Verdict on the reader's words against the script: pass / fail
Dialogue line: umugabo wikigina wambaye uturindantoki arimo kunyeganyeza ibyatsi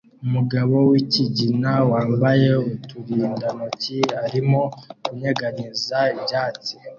pass